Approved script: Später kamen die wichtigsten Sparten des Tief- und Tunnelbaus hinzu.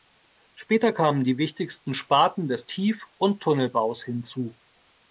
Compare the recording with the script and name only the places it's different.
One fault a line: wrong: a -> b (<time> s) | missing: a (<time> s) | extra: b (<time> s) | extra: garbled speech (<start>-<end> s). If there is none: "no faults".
no faults